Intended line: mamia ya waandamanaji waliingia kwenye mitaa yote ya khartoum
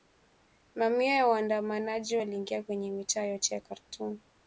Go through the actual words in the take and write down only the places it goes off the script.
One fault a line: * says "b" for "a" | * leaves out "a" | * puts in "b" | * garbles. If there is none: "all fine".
all fine